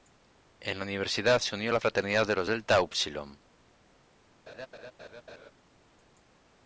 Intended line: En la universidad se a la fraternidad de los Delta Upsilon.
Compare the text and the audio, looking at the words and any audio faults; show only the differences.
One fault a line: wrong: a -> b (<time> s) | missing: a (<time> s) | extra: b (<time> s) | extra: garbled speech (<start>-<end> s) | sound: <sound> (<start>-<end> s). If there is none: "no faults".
extra: unió (1.5 s)
sound: laugh (4.5-5.5 s)